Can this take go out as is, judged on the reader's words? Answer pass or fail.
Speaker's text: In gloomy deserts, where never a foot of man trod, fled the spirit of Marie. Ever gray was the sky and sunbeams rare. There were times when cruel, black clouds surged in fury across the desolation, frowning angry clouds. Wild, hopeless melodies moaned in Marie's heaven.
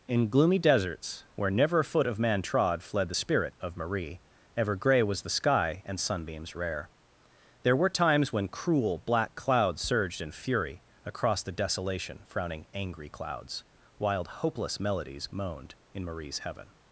pass